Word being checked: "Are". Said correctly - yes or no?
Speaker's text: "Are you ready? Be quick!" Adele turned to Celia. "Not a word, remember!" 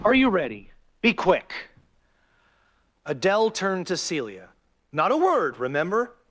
yes